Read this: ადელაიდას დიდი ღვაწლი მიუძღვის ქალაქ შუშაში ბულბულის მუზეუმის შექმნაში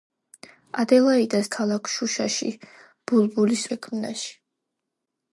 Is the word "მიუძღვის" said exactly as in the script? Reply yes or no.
no